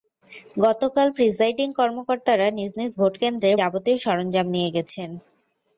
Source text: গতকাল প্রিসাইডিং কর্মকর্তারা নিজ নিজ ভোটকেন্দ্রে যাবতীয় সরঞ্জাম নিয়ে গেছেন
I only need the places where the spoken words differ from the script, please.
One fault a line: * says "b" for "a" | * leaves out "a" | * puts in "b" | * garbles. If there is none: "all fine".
all fine